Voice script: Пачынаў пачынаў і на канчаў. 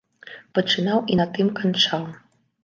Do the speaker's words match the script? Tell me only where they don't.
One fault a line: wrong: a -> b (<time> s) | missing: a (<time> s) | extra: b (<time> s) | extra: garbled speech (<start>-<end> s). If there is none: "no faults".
missing: пачынаў (1.0 s)
extra: тым (1.4 s)